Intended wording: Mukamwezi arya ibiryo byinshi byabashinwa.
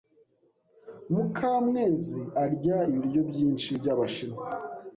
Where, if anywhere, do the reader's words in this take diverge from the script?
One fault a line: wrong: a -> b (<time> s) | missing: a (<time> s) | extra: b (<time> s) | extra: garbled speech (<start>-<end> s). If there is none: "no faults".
no faults